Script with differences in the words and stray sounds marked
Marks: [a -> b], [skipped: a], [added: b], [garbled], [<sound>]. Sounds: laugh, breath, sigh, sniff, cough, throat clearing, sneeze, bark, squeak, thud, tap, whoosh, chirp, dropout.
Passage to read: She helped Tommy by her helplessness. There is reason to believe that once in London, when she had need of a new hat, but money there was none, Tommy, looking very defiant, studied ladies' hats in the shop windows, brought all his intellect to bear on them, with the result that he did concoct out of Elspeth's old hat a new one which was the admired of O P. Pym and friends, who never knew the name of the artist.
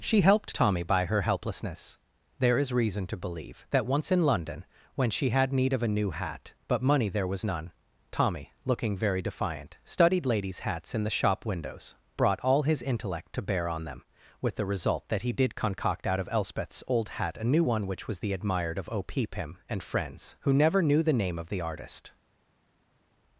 She helped Tommy by her helplessness. There is reason to believe that once in London, when she had need of a new hat, but money there was none, Tommy, looking very defiant, studied ladies' hats in the shop windows, brought all his intellect to bear on them, with the result that he did concoct out of Elspeth's old hat a new one which was the admired of O P. Pym and friends, who never knew the name of the artist.